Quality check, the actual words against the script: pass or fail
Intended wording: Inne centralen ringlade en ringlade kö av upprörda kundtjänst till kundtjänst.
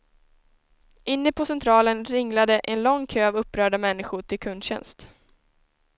fail